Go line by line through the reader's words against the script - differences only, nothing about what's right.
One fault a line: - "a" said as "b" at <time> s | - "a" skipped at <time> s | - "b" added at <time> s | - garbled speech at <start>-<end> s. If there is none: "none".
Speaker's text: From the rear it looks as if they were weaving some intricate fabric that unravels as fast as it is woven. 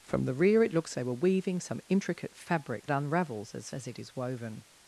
- "as if" skipped at 1.0 s
- "that" skipped at 2.9 s
- "fast" skipped at 3.7 s